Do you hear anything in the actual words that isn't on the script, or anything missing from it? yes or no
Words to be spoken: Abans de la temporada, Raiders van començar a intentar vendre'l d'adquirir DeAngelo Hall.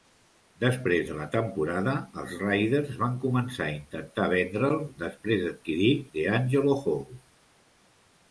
yes